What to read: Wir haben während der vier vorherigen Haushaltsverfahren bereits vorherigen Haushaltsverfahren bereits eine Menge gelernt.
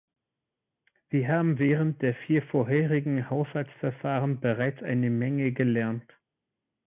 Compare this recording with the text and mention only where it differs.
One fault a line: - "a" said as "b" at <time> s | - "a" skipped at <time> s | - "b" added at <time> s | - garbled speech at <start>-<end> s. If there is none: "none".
- "vorherigen Haushaltsverfahren bereits" skipped at 4.8 s